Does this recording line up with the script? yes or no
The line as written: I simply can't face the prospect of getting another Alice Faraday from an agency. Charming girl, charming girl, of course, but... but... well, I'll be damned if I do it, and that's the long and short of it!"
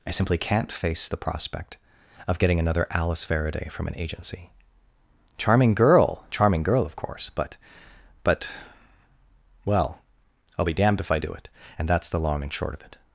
yes